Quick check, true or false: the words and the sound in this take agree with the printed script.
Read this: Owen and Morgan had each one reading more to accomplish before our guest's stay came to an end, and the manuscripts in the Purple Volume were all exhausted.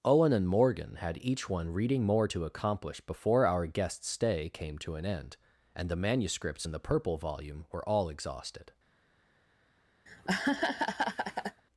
false